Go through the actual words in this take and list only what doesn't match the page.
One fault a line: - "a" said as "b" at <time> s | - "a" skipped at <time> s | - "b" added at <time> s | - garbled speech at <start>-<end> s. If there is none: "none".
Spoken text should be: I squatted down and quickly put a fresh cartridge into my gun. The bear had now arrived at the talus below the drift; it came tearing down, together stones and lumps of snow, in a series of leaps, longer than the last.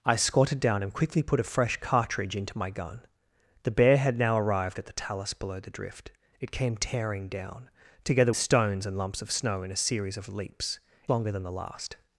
none